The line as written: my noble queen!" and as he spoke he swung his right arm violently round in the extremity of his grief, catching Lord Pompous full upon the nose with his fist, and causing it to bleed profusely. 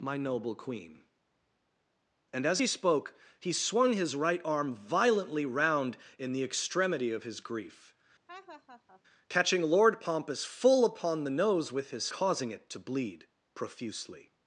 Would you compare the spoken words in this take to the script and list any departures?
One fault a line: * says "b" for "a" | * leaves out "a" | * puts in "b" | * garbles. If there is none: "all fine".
* leaves out "fist and"